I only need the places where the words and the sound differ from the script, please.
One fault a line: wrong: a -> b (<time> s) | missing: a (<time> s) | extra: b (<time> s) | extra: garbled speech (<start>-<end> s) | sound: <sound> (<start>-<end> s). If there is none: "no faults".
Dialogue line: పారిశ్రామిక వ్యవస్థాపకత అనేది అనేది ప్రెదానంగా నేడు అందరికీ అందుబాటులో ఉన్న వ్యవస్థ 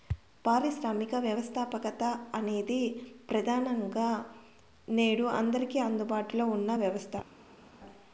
missing: అనేది (2.8 s)